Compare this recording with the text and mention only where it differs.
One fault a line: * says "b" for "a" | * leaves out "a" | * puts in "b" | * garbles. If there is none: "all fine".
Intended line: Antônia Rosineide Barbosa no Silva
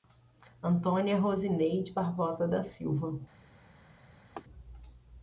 * says "da" for "no"